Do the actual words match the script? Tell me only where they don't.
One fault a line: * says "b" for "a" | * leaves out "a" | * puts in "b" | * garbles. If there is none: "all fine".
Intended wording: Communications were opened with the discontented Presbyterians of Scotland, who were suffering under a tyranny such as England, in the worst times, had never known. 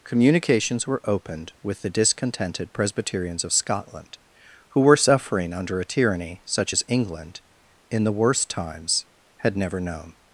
all fine